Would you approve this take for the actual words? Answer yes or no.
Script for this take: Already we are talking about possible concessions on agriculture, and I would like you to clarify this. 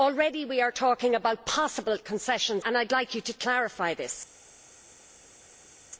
no